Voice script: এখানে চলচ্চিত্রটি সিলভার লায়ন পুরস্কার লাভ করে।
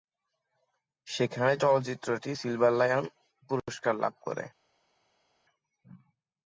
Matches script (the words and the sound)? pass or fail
fail